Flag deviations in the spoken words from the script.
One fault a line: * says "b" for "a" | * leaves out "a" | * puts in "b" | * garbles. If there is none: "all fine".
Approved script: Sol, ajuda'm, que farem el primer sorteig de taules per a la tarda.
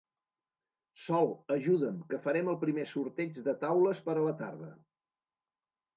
all fine